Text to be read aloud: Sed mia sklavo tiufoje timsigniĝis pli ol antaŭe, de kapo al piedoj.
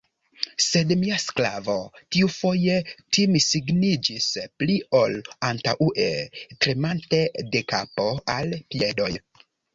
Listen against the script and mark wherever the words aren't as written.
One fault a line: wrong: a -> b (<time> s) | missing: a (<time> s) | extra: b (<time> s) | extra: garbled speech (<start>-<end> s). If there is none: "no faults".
extra: tremante (6.7 s)